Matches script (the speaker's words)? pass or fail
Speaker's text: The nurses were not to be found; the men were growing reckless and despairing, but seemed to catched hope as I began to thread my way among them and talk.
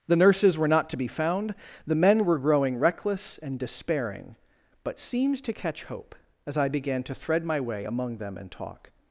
fail